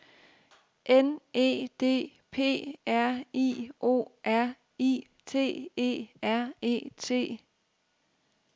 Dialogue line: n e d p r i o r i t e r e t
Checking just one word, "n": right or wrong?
right